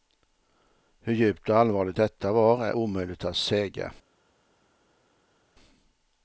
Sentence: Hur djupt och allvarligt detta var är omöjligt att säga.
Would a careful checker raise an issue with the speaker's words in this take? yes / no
no